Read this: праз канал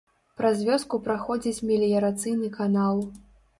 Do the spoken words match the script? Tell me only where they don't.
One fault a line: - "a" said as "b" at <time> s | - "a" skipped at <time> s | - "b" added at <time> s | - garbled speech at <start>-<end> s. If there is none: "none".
- "вёску праходзіць меліярацыйны" added at 0.7 s